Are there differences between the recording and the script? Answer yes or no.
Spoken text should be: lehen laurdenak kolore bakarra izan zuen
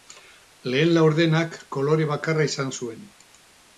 no